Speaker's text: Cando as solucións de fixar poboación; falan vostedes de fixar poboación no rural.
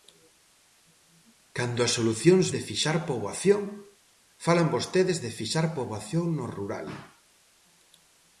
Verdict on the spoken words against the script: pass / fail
pass